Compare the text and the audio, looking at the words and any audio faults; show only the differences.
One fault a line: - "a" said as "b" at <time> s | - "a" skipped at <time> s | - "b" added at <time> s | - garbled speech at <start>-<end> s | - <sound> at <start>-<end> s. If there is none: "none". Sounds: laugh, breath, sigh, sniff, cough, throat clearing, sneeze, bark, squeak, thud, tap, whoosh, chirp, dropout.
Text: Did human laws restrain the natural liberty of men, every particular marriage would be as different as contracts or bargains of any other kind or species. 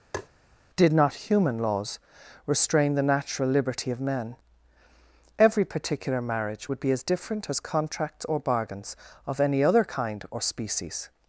- tap at 0.1-0.3 s
- "not" added at 0.9 s